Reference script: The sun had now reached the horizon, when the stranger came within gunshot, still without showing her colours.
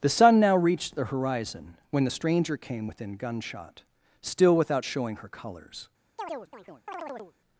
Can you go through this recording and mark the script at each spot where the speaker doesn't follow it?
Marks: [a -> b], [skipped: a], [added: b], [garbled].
The sun [skipped: had] now reached the horizon, when the stranger came within gunshot, still without showing her colours.